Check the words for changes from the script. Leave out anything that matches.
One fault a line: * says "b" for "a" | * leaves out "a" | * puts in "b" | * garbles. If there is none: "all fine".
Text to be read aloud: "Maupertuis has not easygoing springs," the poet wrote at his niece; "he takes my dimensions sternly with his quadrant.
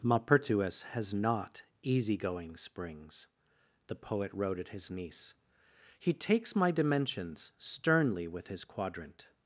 all fine